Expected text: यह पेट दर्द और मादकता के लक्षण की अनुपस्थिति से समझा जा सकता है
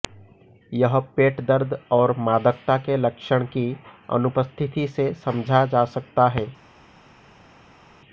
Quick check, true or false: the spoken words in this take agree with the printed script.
true